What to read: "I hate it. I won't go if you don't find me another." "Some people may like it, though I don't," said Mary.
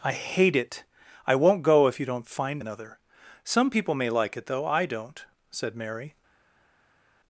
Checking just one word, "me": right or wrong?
wrong